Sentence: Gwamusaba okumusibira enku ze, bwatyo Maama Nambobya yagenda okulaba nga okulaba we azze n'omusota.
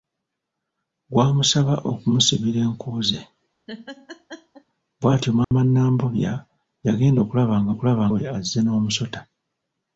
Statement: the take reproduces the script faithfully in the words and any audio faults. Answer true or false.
false